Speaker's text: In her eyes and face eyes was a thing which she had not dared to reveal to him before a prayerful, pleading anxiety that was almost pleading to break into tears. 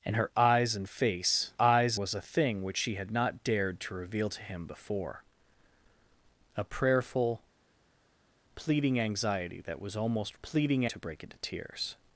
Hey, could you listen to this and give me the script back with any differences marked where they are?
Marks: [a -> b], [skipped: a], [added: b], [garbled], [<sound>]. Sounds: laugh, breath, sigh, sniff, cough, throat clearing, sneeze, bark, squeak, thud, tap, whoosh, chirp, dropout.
In her eyes and face eyes was a thing which she had not dared to reveal to him before a prayerful, pleading anxiety that was almost pleading to break into tears.